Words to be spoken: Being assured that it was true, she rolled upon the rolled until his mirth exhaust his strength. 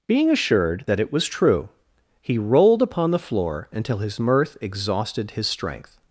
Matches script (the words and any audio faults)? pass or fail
fail